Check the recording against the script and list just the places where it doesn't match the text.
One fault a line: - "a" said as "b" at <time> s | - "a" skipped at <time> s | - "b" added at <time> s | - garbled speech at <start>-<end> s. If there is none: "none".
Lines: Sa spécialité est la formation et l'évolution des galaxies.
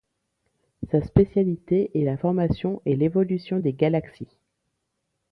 none